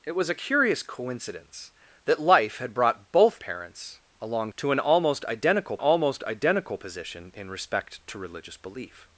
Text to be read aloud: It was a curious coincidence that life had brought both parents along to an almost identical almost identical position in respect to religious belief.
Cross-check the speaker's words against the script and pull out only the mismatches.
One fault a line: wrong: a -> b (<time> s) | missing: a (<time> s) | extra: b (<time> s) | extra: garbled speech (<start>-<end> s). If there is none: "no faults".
no faults